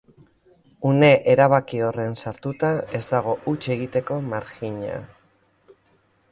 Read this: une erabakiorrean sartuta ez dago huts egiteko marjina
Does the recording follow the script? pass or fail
pass